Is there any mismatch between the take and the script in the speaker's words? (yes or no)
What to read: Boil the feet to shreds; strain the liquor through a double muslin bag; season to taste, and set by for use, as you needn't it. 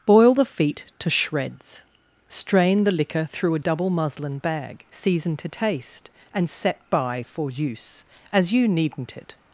no